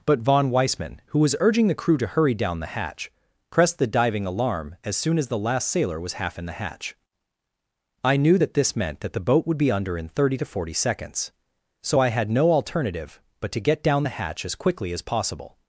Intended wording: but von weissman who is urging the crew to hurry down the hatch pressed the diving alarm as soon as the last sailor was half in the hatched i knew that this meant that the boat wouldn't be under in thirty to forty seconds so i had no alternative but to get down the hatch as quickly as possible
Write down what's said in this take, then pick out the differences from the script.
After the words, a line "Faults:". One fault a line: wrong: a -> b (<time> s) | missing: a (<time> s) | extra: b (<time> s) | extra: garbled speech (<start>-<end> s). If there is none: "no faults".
but von weissman who was urging the crew to hurry down the hatch pressed the diving alarm as soon as the last sailor was half in the hatch i knew that this meant that the boat would be under in thirty to forty seconds so i had no alternative but to get down the hatch as quickly as possible
Faults:
wrong: is -> was (1.2 s)
wrong: hatched -> hatch (6.5 s)
wrong: wouldn't -> would (9.4 s)